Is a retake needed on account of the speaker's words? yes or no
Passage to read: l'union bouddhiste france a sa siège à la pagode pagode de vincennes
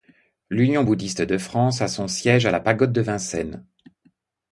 yes